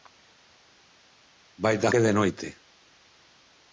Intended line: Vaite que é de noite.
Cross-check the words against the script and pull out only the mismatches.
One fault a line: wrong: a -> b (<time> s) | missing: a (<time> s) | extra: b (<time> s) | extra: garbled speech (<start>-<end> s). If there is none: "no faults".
no faults